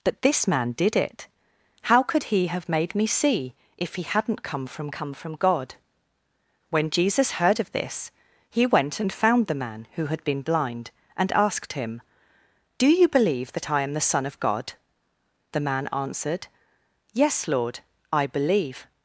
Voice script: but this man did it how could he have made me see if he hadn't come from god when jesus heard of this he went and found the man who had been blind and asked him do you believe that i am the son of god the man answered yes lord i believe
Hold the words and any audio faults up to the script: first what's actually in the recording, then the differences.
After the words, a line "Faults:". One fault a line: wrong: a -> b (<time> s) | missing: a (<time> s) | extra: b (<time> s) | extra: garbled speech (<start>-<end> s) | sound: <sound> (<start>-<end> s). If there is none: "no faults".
but this man did it how could he have made me see if he hadn't come from come from god when jesus heard of this he went and found the man who had been blind and asked him do you believe that i am the son of god the man answered yes lord i believe
Faults:
extra: come from (4.9 s)